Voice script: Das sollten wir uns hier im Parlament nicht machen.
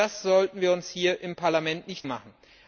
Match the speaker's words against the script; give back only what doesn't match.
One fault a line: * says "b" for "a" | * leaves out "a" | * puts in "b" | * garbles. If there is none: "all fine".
all fine